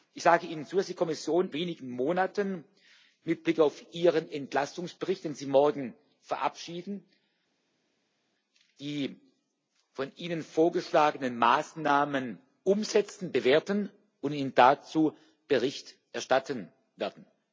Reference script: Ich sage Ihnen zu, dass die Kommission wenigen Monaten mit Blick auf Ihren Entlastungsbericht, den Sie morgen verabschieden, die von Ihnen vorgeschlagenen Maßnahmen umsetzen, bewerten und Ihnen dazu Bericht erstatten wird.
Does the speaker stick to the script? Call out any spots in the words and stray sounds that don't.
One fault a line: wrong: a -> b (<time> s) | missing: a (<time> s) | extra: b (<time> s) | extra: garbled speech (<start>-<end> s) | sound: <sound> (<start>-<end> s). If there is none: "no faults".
no faults